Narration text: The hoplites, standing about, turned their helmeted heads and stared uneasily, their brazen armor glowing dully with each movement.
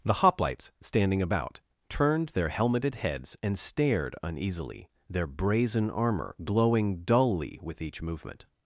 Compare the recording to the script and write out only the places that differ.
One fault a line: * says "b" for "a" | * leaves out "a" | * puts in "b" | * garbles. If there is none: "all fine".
all fine